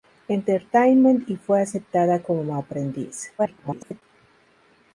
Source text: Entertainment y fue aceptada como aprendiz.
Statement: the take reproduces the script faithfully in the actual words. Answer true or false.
false